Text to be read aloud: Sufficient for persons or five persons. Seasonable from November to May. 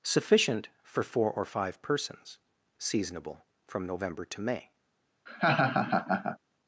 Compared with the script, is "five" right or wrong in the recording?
right